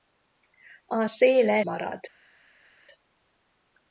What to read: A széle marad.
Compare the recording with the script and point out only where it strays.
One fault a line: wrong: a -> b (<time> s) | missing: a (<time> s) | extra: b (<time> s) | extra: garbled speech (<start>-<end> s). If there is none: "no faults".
no faults